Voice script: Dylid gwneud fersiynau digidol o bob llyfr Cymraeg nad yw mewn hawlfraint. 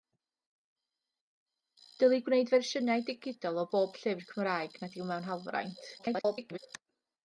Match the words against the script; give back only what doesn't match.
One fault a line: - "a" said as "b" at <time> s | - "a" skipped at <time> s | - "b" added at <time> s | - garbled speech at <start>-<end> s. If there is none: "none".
- garbled speech at 6.0-6.6 s